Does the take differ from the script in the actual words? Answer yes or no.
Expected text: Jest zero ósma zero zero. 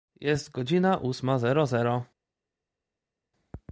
yes